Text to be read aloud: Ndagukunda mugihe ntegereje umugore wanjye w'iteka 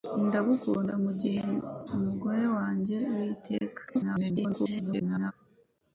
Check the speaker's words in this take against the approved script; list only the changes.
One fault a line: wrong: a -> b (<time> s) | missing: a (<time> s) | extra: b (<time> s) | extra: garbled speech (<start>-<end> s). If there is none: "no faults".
missing: ntegereje (1.4 s)
extra: garbled speech (3.9-5.3 s)